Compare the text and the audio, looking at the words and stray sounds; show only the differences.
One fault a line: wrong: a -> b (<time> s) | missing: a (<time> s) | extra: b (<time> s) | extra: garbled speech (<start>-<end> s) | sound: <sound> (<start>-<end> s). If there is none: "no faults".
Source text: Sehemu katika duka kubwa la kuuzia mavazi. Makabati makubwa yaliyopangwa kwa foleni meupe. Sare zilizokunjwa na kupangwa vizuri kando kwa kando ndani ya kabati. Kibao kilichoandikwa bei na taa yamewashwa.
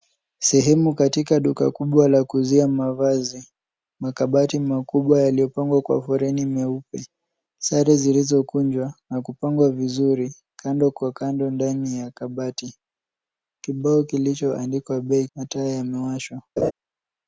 sound: laugh (16.6-16.7 s)